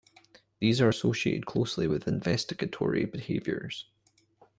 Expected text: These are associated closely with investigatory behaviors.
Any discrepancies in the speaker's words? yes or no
no